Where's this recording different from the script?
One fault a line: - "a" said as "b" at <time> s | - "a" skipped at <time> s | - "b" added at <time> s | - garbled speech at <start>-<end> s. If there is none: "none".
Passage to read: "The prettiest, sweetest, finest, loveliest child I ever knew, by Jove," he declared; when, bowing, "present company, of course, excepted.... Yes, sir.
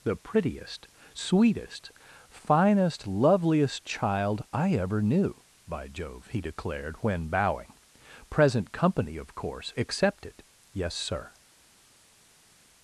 none